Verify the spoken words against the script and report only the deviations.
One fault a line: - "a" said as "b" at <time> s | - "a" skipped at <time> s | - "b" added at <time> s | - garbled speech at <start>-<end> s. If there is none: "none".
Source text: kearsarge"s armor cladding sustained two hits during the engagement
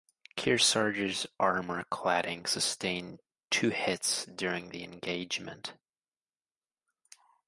none